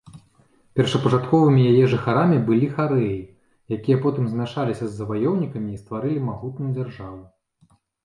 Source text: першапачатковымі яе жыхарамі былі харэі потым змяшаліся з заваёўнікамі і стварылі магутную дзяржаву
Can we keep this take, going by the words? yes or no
no